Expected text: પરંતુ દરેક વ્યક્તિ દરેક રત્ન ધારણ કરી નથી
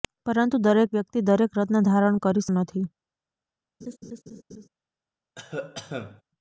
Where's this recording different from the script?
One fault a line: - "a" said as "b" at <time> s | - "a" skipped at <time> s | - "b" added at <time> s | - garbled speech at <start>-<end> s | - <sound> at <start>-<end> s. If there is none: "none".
- laugh at 3.8-4.7 s
- cough at 5.4-6.2 s